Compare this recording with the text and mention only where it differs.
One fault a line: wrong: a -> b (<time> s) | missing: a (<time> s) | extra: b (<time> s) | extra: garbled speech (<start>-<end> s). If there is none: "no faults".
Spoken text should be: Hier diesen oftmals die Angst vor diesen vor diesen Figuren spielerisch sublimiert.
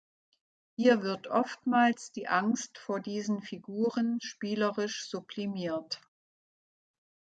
wrong: diesen -> wird (1.0 s)
missing: vor diesen (3.4 s)